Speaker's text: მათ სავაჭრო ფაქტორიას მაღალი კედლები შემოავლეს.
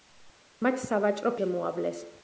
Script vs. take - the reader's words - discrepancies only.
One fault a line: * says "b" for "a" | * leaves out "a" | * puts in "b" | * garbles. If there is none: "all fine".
* leaves out "ფაქტორიას მაღალი კედლები"